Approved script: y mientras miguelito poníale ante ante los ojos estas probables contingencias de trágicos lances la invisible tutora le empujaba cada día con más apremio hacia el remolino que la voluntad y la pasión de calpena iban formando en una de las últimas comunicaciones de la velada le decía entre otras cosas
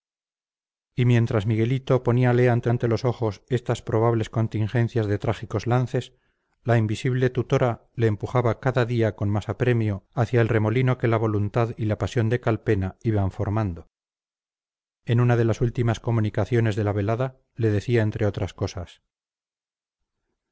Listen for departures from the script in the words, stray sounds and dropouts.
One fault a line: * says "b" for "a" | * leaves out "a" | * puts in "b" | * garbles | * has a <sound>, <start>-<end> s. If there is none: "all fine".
all fine